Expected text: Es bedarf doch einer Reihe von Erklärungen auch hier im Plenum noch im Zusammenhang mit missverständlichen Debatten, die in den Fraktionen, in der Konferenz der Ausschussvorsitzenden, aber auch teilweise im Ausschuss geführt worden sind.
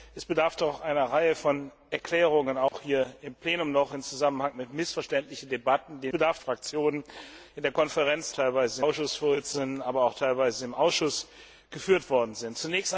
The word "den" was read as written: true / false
false